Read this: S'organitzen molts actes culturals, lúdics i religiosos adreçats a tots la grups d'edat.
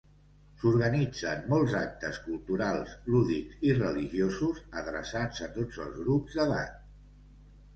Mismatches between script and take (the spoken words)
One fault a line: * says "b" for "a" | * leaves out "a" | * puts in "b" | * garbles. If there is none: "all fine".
* says "els" for "la"